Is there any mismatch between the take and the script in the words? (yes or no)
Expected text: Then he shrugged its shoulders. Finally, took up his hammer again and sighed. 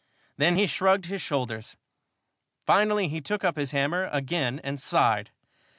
yes